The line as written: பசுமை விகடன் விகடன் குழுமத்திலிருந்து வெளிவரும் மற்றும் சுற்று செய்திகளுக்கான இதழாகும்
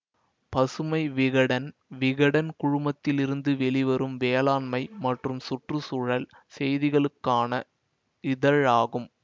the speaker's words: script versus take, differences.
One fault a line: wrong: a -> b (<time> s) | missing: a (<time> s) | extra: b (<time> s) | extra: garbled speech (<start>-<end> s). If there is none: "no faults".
extra: வேளாண்மை (4.2 s)
extra: சூழல் (5.8 s)